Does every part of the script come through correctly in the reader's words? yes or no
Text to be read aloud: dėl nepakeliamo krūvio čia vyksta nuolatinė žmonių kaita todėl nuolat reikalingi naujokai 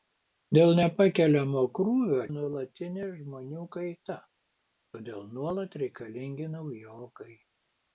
no